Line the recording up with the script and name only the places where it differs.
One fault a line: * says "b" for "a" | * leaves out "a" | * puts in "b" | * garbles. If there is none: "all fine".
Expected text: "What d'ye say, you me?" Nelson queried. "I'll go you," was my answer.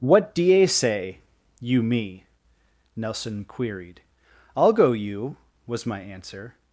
all fine